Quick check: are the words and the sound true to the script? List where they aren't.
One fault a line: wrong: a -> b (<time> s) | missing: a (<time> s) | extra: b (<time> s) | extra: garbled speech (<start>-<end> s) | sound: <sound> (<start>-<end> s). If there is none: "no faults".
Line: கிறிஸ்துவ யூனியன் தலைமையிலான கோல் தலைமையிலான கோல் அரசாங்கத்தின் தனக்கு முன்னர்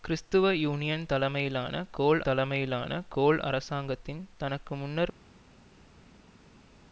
no faults